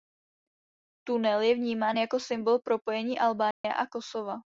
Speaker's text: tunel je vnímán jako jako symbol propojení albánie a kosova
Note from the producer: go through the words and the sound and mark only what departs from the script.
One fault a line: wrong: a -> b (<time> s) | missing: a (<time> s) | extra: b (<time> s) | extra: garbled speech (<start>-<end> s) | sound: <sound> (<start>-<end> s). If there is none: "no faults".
missing: jako (2.2 s)
sound: dropout (3.5-3.6 s)